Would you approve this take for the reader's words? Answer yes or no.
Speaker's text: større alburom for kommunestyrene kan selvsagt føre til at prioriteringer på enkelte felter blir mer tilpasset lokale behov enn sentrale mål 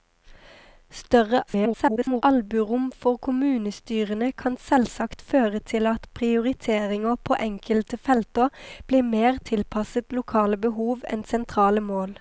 no